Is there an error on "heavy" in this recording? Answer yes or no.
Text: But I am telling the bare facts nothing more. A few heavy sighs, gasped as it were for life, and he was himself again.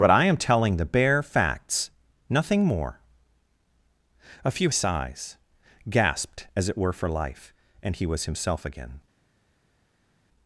yes